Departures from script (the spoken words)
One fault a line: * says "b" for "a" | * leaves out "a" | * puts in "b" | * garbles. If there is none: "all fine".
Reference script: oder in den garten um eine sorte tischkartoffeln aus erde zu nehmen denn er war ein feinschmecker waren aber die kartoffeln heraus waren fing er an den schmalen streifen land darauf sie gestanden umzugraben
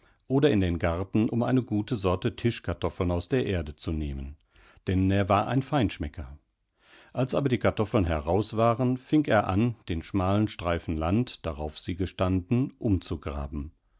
* puts in "gute"
* puts in "der"
* says "als" for "waren"